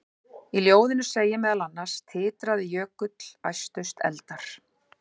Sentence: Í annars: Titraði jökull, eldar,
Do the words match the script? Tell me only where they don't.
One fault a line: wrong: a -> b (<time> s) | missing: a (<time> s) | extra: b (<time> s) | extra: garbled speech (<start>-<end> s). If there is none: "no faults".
extra: ljóðinu segir meðal (0.7 s)
extra: æstust (3.5 s)